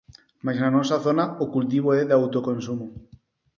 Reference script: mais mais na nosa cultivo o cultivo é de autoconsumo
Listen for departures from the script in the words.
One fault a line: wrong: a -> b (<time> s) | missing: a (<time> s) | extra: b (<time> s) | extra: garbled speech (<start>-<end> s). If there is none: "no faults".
missing: mais (0.6 s)
wrong: cultivo -> zona (1.1 s)